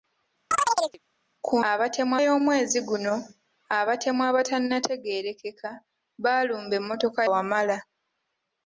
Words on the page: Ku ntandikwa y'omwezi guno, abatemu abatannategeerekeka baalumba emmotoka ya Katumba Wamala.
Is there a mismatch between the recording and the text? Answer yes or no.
yes